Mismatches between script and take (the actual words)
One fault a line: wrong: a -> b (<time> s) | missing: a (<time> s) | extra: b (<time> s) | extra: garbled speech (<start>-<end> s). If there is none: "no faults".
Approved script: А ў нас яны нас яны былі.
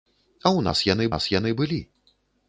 no faults